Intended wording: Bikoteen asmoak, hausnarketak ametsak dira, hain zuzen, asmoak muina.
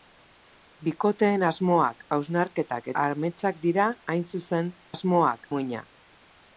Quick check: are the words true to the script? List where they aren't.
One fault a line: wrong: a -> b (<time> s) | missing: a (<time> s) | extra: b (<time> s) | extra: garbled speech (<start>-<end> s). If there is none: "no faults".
no faults